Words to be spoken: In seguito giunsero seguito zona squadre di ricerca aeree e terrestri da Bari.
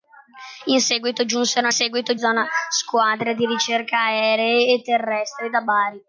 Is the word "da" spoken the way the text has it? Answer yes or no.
yes